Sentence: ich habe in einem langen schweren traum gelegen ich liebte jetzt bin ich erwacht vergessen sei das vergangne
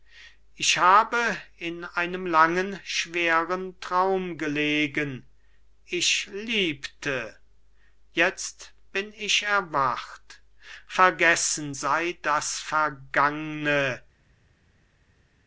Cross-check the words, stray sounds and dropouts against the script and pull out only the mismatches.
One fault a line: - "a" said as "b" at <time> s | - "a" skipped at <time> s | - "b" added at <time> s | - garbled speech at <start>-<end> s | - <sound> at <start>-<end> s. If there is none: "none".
none